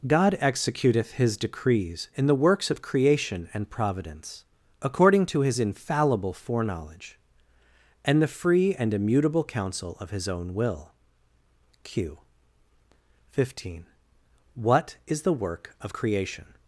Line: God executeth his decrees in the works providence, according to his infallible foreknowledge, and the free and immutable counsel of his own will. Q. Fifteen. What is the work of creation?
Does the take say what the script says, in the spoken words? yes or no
no